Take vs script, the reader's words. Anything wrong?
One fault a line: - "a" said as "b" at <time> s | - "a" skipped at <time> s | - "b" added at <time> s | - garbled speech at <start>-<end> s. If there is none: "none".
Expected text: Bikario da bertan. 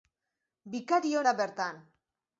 none